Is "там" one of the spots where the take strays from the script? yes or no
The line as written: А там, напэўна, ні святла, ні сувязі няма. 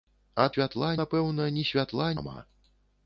yes